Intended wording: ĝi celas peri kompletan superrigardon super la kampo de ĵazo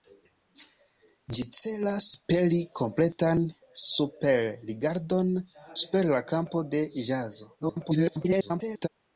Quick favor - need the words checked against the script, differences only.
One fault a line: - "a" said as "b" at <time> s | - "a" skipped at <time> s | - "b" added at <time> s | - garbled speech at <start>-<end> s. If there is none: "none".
- garbled speech at 7.6-8.9 s